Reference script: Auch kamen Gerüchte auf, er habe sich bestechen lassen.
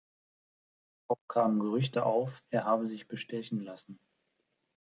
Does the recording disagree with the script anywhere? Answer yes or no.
no